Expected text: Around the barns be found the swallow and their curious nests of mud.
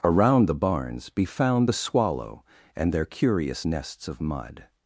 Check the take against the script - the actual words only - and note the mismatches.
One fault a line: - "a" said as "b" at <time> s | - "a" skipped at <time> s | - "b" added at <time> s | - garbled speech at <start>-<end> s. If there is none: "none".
none